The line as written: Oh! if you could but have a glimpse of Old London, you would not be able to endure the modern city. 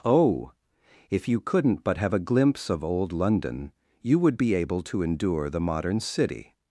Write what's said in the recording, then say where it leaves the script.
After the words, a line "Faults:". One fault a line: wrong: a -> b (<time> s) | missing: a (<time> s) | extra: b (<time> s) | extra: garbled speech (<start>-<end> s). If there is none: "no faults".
Oh! if you couldn't but have a glimpse of Old London, you would be able to endure the modern city.
Faults:
wrong: could -> couldn't (1.4 s)
missing: not (4.4 s)